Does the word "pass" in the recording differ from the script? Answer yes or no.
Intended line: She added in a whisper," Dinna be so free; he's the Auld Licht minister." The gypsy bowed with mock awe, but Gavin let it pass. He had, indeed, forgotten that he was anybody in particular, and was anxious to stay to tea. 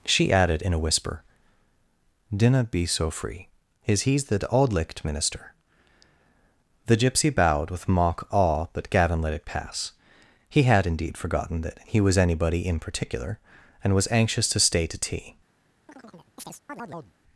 no